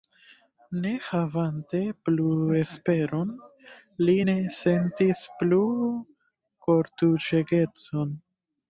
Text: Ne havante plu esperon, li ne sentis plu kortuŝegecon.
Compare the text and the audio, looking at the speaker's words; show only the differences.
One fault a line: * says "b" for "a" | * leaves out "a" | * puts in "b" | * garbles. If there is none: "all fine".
all fine